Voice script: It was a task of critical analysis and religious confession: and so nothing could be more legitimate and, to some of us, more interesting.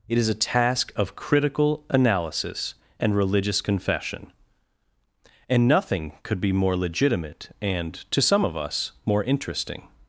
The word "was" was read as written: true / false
false